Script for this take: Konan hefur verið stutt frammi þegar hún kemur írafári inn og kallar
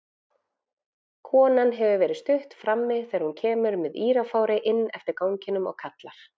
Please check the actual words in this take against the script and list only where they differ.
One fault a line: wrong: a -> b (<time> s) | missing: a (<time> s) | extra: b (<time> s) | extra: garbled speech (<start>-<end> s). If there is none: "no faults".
extra: með (3.8 s)
extra: eftir ganginum (5.0 s)